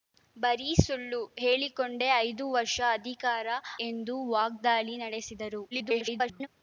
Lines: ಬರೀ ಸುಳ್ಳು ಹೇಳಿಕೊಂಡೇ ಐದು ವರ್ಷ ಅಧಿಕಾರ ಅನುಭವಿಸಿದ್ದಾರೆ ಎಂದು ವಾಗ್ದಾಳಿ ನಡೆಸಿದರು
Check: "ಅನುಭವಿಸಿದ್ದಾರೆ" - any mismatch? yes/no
yes